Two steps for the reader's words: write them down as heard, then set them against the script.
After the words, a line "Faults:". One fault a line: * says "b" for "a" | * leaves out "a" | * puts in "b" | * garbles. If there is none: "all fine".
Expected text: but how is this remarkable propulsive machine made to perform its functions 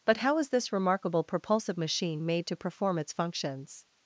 but how is this remarkable propulsive machine made to perform its functions
Faults:
all fine